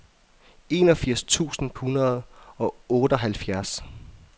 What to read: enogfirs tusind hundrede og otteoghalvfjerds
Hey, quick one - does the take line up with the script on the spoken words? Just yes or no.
yes